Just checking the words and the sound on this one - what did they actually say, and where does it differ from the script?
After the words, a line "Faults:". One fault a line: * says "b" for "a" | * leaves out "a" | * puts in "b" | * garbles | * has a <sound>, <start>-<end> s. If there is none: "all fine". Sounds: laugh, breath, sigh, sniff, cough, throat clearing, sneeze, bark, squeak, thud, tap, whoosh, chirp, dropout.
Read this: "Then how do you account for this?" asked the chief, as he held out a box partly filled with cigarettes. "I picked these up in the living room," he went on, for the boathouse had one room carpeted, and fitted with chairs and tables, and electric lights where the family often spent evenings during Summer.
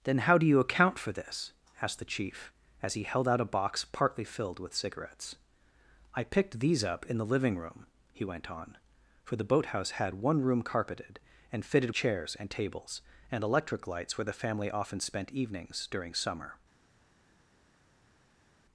"Then how do you account for this?" asked the chief, as he held out a box partly filled with cigarettes. "I picked these up in the living room," he went on, for the boathouse had one room carpeted, and fitted chairs and tables, and electric lights where the family often spent evenings during Summer.
Faults:
* leaves out "with"